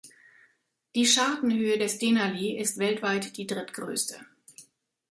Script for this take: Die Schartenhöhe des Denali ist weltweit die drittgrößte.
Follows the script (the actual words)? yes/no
yes